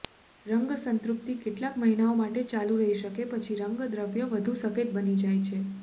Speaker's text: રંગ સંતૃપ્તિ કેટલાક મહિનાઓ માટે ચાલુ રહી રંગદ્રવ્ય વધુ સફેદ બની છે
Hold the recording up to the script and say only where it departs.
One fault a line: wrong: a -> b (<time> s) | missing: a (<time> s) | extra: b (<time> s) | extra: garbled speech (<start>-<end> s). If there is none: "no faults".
extra: શકે પછી (3.0 s)
extra: જાય (5.2 s)